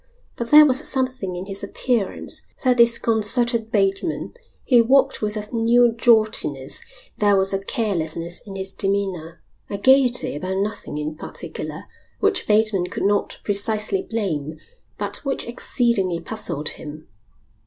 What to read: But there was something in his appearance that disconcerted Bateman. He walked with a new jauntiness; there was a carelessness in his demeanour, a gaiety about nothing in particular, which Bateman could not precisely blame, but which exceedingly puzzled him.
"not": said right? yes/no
yes